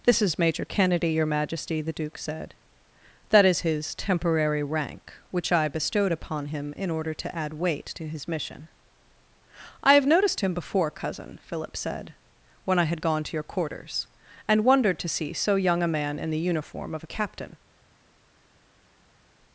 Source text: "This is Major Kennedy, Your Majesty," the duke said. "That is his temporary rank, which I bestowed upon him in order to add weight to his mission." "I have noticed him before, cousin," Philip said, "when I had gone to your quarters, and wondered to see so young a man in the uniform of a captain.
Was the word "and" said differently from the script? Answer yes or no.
no